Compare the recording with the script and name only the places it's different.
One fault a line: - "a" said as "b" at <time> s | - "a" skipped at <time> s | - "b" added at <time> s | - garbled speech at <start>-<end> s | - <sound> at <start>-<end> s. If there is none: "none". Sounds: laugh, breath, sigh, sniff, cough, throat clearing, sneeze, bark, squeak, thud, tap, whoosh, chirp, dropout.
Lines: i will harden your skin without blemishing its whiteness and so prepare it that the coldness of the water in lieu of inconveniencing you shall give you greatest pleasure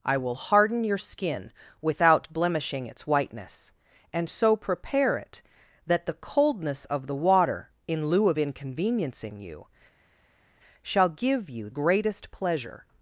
none